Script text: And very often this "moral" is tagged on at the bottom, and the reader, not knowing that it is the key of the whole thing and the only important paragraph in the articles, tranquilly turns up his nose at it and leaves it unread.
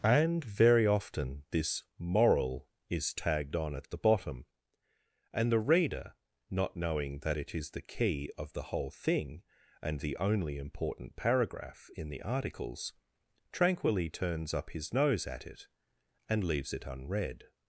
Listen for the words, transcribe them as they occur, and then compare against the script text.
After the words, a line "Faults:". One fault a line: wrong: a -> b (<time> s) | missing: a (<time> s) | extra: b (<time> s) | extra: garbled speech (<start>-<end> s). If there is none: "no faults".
And very often this "moral" is tagged on at the bottom, and the reader, not knowing that it is the key of the whole thing and the only important paragraph in the articles, tranquilly turns up his nose at it and leaves it unread.
Faults:
no faults